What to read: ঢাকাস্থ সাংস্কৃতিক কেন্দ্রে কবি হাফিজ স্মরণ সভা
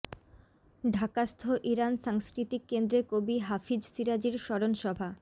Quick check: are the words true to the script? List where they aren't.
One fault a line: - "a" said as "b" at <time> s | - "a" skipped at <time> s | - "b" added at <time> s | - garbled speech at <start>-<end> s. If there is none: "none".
- "ইরান" added at 1.7 s
- "শিরাজির" added at 3.9 s